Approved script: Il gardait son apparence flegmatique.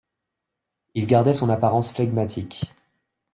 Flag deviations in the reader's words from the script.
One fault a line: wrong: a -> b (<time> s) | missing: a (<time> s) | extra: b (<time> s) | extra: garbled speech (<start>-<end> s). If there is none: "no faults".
no faults